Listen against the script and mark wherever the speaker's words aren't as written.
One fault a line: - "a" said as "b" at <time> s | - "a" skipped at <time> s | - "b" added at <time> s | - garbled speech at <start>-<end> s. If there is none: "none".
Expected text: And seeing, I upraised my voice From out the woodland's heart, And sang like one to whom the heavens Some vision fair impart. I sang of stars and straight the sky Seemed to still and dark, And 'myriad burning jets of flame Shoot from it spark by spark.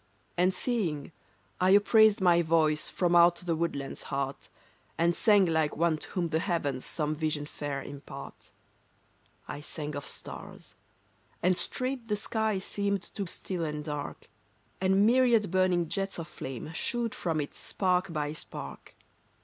none